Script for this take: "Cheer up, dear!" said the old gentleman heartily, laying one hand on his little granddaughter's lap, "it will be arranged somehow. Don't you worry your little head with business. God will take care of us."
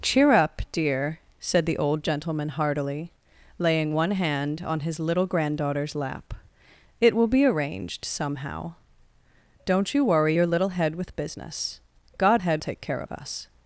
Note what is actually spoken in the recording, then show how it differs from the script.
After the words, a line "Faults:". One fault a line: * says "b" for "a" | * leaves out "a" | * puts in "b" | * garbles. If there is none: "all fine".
"Cheer up, dear!" said the old gentleman heartily, laying one hand on his little granddaughter's lap, "it will be arranged somehow. Don't you worry your little head with business. God head take care of us."
Faults:
* says "head" for "will"